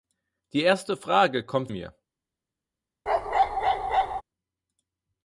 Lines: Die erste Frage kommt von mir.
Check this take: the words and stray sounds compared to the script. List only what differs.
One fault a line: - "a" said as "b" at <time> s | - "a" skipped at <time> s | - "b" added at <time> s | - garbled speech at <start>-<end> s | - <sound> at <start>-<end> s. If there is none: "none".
- "von" skipped at 1.7 s
- bark at 3.1-4.2 s